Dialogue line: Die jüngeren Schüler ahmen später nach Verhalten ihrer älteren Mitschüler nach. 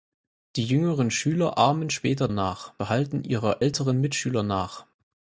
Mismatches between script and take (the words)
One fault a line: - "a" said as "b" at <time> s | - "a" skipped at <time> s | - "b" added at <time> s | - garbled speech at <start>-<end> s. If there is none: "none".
none